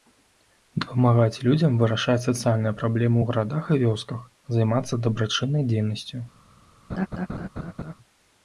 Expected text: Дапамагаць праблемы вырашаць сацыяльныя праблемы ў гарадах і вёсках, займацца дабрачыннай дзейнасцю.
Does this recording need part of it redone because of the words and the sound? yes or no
yes